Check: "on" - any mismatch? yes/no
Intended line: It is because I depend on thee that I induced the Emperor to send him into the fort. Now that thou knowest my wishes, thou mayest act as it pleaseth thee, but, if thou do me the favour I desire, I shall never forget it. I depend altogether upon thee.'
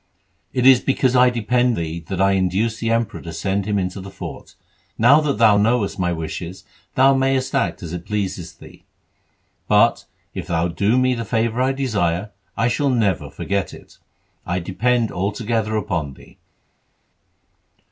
yes